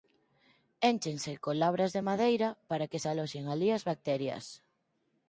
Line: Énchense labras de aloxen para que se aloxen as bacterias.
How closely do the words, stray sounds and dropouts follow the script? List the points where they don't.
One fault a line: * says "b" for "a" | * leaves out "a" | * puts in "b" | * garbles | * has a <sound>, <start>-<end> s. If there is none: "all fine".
* puts in "con"
* says "madeira" for "aloxen"
* puts in "alí"